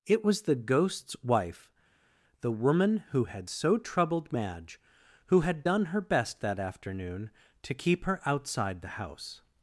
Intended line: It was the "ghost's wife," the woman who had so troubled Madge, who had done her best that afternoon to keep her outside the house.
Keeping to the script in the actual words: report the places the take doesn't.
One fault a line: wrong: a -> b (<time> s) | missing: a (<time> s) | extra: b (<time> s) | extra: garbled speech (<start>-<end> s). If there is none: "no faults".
no faults